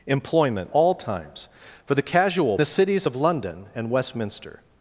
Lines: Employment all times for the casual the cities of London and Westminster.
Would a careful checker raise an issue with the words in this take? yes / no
no